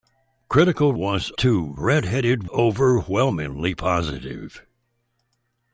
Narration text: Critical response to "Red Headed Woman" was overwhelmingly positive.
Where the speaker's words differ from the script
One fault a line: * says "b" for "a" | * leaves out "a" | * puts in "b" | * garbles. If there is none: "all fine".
* says "was" for "response"
* leaves out "Woman was"